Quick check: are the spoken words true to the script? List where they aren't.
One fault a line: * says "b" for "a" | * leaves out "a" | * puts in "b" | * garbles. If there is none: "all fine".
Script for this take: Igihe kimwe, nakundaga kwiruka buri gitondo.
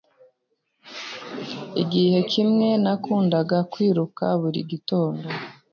all fine